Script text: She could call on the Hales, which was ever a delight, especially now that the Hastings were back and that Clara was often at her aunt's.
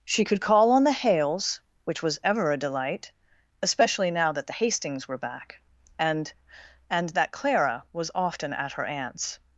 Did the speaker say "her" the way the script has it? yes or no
yes